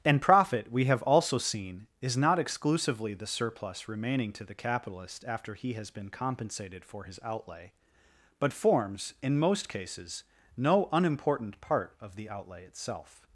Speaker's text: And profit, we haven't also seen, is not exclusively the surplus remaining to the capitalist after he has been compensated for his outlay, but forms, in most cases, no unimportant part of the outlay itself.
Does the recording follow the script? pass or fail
fail